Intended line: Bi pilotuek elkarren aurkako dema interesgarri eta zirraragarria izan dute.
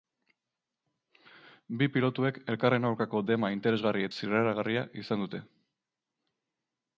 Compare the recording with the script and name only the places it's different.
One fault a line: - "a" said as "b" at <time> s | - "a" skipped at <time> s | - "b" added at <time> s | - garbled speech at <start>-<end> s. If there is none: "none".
- "eta" skipped at 4.1 s